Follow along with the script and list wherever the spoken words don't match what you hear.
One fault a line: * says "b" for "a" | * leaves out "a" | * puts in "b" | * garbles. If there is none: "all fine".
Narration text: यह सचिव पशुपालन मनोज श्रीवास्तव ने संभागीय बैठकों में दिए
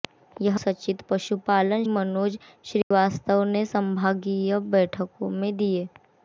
all fine